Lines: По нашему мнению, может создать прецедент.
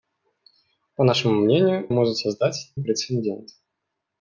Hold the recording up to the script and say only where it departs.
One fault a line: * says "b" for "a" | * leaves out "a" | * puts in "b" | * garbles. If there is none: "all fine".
all fine